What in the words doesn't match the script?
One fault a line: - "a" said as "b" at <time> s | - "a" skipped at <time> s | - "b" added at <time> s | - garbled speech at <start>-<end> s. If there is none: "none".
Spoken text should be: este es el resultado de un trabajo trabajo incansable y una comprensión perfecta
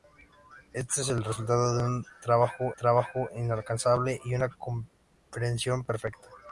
none